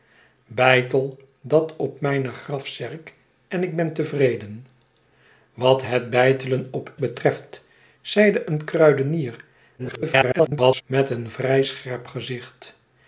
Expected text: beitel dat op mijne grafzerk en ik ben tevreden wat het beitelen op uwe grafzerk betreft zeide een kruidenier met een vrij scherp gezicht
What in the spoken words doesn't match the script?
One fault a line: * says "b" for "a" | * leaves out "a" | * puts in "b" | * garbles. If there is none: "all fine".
* leaves out "uwe grafzerk"
* garbles